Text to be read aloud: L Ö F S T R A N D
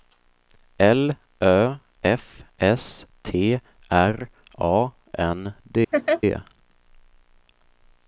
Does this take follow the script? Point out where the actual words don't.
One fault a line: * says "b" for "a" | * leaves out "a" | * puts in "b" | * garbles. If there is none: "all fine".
all fine